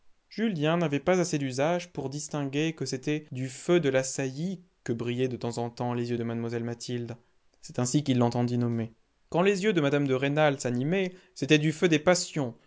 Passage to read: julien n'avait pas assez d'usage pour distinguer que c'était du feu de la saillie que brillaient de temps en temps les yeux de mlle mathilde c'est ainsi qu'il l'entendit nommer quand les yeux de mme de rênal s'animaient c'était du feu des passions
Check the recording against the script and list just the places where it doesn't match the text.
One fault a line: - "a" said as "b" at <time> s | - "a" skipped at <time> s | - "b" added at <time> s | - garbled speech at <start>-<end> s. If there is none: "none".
none